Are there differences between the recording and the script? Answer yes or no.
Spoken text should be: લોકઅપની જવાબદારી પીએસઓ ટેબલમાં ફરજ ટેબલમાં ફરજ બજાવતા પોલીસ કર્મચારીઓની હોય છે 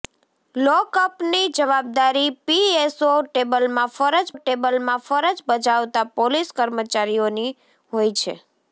no